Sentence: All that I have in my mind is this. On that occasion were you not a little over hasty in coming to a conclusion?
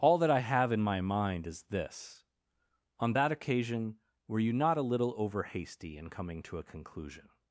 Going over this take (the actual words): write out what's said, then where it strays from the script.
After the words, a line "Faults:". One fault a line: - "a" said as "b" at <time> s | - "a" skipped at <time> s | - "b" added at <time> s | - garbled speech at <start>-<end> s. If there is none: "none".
All that I have in my mind is this. On that occasion were you not a little over hasty in coming to a conclusion?
Faults:
none